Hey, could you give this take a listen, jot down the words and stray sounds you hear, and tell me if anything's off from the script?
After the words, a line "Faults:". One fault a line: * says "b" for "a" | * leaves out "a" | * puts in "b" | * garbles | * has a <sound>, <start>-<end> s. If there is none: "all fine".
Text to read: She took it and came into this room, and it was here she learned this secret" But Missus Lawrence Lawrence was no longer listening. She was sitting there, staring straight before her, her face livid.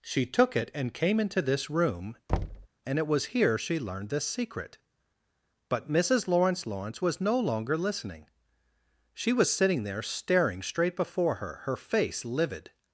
She took it and came into this room, and it was here she learned this secret" But Missus Lawrence Lawrence was no longer listening. She was sitting there, staring straight before her, her face livid.
Faults:
* has a thud, 2.3-2.7 s